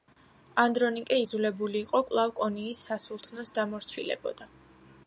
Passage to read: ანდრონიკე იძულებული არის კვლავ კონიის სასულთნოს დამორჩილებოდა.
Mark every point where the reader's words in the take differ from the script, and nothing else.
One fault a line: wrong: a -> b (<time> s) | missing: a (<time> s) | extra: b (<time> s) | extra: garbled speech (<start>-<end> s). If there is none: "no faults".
wrong: არის -> იყო (1.9 s)